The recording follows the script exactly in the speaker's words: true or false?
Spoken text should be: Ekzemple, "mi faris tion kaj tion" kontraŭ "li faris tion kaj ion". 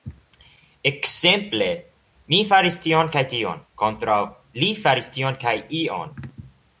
true